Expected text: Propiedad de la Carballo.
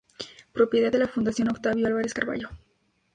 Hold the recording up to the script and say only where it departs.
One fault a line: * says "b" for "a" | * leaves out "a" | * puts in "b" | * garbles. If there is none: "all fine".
* puts in "Fundación Octavio Álvarez"